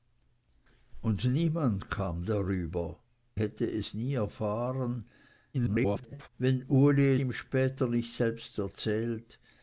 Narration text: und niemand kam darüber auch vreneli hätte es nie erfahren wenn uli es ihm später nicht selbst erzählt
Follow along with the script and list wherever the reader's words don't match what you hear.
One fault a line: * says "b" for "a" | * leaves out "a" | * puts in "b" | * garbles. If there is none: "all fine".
* leaves out "auch vreneli"
* garbles
* leaves out "es"